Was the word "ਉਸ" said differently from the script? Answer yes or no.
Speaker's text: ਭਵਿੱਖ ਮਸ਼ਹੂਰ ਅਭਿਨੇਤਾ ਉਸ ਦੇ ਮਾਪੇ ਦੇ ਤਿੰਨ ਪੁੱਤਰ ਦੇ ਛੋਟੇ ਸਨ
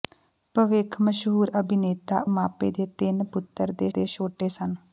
yes